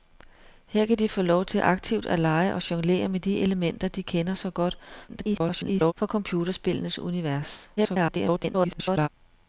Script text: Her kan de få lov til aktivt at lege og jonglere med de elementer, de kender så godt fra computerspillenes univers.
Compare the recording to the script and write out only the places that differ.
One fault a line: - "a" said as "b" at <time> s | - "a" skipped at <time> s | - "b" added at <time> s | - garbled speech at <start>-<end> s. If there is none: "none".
- garbled speech at 5.1-5.9 s
- garbled speech at 7.8-9.1 s